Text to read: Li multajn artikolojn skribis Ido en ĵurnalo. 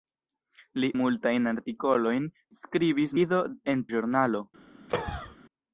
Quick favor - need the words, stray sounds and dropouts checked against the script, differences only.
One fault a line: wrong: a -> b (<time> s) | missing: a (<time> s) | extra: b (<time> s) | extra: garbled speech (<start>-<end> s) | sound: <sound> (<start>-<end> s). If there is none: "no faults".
sound: cough (4.9-5.4 s)